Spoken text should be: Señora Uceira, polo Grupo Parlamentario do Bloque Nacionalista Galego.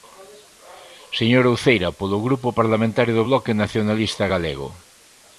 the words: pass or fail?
pass